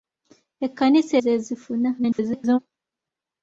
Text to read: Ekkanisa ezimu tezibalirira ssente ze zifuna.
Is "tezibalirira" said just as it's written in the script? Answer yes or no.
no